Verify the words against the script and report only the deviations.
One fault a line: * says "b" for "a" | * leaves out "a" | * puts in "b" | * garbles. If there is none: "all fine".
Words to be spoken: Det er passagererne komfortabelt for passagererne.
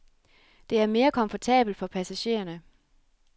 * says "mere" for "passagererne"